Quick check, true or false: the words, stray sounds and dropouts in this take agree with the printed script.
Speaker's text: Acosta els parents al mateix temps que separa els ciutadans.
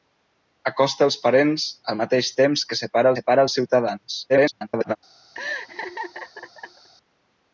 false